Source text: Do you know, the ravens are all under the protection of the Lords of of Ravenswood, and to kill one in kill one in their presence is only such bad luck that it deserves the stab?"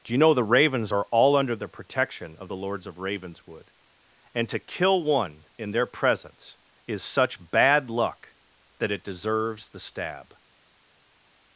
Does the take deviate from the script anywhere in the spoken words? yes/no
yes